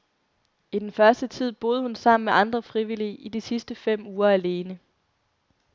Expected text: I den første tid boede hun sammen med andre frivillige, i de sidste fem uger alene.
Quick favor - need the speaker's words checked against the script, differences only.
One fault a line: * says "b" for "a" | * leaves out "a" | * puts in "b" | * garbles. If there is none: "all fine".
all fine